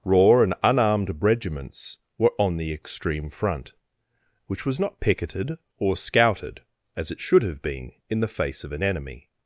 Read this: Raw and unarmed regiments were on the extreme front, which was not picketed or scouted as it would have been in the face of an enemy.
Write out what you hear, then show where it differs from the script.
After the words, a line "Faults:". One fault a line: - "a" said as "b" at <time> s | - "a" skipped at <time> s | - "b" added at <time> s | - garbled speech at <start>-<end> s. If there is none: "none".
Raw and unarmed regiments were on the extreme front, which was not picketed or scouted as it should have been in the face of an enemy.
Faults:
- "would" said as "should" at 7.2 s